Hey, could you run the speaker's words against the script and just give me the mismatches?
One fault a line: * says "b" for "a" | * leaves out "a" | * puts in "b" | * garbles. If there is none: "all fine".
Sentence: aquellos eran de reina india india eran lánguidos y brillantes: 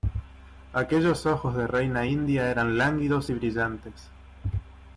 * says "ojos" for "eran"
* leaves out "india"